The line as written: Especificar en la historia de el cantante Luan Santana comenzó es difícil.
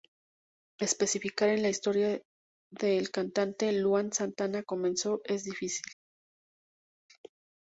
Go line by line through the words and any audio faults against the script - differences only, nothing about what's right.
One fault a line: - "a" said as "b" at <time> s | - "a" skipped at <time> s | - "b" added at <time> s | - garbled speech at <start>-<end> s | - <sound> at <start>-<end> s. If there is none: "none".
none